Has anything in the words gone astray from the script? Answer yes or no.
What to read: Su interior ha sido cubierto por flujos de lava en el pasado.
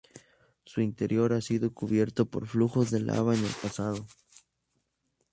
no